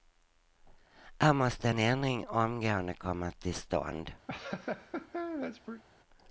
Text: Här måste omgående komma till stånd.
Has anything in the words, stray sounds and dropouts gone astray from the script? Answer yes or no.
yes